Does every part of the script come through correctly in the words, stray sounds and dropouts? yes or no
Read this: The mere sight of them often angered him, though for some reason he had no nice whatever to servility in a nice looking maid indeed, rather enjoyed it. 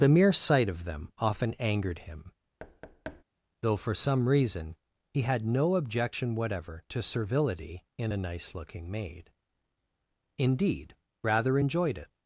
no